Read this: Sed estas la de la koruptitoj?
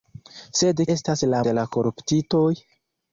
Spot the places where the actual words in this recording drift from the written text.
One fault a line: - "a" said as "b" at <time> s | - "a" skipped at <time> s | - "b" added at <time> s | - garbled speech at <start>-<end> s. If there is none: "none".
none